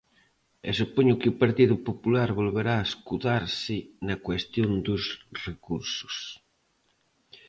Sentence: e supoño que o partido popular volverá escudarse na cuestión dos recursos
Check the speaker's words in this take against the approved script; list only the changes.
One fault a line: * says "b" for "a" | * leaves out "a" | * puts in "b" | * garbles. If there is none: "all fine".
all fine